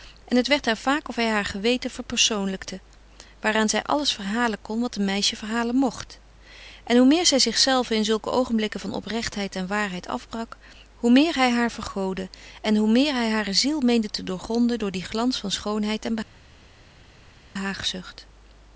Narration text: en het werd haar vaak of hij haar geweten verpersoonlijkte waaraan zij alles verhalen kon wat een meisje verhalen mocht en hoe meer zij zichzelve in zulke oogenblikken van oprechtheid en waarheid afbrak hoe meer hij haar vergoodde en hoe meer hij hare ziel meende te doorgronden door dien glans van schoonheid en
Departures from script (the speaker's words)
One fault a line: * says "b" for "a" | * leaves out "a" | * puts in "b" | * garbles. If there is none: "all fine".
all fine